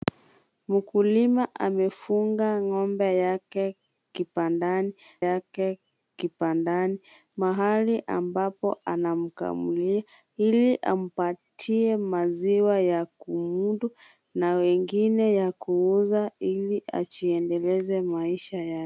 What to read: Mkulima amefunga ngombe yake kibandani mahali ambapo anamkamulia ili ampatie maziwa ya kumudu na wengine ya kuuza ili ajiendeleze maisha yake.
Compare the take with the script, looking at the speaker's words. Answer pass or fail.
fail